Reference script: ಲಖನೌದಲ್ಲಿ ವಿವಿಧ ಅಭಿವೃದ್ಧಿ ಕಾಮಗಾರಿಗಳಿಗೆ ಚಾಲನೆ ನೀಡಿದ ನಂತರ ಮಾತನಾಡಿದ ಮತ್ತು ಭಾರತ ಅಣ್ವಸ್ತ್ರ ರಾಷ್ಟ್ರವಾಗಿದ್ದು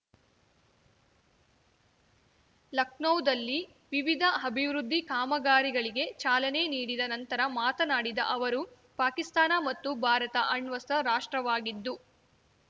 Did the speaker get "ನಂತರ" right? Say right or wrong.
right